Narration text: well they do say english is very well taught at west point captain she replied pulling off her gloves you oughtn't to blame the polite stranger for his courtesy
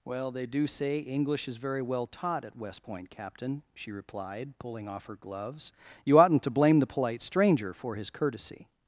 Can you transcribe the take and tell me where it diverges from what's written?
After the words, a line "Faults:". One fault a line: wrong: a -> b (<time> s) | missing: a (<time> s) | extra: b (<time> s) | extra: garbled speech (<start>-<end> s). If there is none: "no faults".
well they do say english is very well taught at west point captain she replied pulling off her gloves you oughtn't to blame the polite stranger for his courtesy
Faults:
no faults